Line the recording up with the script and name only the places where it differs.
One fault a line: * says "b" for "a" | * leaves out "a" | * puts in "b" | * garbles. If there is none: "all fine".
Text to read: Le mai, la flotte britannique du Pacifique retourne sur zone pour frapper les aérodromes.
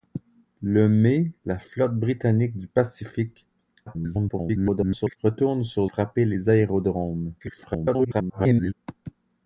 * garbles
* leaves out "zone pour"
* garbles